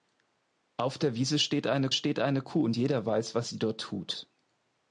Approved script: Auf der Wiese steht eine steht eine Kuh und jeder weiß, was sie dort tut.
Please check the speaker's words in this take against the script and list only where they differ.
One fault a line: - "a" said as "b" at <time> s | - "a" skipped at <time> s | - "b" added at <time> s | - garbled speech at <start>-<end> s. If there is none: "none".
none